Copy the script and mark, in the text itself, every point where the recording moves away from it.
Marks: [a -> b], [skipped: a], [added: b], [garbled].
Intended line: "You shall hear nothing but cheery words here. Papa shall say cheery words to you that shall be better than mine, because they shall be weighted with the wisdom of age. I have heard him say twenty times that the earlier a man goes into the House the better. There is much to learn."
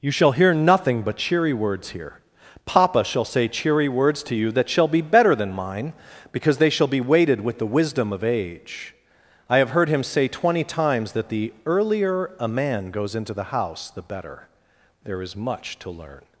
"You shall hear nothing but cheery words here. Papa shall say cheery words to you that shall be better than mine, because they shall be weighted with the wisdom of age. I have heard him say twenty times that the earlier a man goes into the House the better. There is much to learn."